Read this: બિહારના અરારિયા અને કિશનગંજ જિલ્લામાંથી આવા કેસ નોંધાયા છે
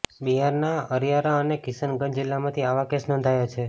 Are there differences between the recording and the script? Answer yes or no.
no